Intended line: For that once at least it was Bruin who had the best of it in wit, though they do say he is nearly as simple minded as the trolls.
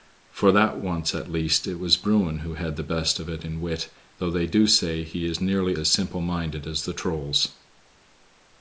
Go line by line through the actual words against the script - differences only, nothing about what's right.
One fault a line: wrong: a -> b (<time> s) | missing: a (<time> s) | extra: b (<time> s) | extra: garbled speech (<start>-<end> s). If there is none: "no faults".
no faults